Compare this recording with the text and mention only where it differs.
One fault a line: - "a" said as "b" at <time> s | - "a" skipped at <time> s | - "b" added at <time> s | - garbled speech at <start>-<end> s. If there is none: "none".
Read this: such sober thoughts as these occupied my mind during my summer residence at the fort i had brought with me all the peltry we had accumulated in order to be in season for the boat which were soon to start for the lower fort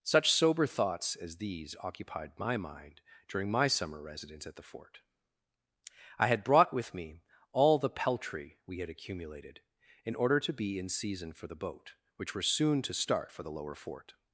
none